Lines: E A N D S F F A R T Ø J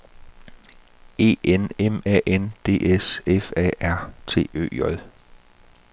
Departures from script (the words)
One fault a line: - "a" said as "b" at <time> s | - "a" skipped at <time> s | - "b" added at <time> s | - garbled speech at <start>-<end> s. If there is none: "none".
- "N M" added at 1.4 s
- "F" skipped at 3.5 s